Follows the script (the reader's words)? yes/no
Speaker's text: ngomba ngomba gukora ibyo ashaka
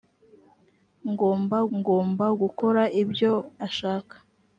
yes